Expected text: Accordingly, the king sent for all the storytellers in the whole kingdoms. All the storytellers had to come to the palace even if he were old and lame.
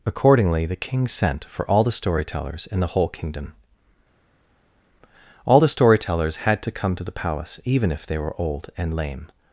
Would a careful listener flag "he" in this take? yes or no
yes